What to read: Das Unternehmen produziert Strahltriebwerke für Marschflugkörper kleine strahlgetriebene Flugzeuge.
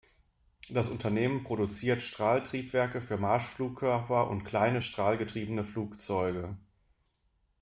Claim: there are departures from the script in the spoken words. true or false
true